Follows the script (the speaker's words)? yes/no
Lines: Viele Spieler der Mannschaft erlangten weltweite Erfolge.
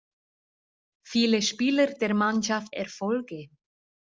no